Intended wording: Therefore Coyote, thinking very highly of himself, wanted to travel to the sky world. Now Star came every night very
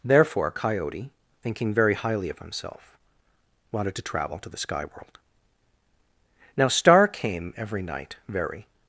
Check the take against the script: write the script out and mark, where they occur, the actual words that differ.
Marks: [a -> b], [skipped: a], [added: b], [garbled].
Therefore Coyote, thinking very highly of himself, wanted to travel to the sky world. Now Star came every night very